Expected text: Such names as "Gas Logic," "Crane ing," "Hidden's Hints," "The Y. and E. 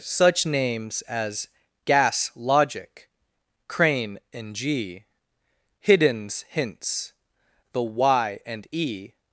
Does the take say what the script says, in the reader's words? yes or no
no